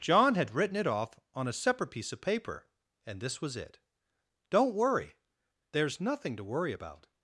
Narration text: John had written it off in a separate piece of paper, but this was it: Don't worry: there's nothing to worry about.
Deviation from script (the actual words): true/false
true